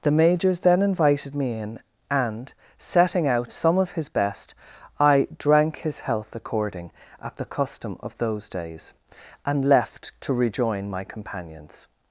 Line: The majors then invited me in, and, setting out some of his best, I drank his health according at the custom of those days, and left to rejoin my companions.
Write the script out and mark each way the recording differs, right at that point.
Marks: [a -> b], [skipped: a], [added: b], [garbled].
The majors then invited me in, and, setting out some of his best, I drank his health according at the custom of those days, and left to rejoin my companions.